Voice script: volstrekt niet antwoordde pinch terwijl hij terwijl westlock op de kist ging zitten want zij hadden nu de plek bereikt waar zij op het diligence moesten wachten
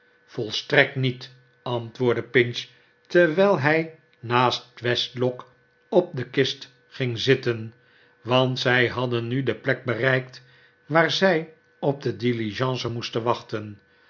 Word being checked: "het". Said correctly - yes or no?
no